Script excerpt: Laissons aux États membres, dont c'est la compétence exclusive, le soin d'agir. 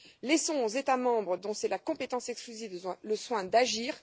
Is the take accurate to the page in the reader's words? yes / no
yes